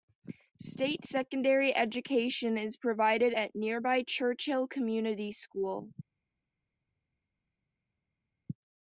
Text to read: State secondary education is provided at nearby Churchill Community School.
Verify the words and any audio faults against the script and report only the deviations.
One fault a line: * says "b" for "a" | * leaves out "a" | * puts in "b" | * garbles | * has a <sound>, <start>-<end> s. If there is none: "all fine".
all fine